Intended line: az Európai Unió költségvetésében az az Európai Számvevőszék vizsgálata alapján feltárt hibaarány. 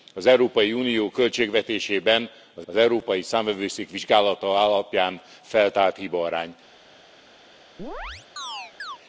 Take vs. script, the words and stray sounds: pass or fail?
fail